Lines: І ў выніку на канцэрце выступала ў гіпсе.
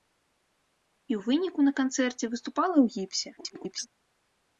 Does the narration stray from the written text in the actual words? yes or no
yes